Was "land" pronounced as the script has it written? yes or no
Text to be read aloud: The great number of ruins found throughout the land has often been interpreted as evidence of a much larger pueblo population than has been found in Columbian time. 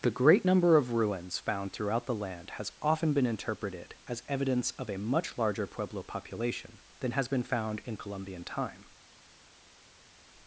yes